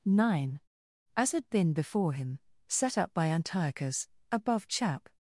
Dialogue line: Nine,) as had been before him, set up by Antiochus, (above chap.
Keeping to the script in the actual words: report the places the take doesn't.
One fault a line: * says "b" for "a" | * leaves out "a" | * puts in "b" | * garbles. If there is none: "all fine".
all fine